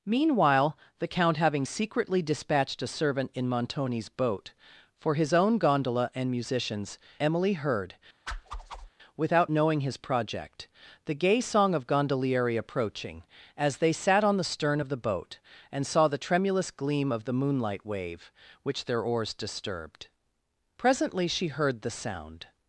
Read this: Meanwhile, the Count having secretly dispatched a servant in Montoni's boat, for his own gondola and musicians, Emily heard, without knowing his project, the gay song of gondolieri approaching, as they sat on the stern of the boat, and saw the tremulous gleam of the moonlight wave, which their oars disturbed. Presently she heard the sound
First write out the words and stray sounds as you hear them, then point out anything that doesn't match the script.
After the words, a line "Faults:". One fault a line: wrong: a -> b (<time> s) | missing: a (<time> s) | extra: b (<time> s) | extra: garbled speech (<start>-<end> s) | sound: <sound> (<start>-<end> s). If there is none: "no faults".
Meanwhile, the Count having secretly dispatched a servant in Montoni's boat, for his own gondola and musicians, Emily heard, without knowing his project, the gay song of gondolieri approaching, as they sat on the stern of the boat, and saw the tremulous gleam of the moonlight wave, which their oars disturbed. Presently she heard the sound
Faults:
sound: whoosh (8.3-8.9 s)